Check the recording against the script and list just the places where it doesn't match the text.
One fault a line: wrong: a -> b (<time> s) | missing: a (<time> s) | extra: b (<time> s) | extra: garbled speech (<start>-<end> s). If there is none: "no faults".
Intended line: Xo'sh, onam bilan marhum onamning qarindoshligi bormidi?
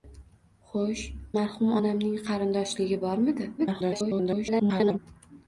missing: onam bilan (1.0 s)
extra: garbled speech (3.6-5.0 s)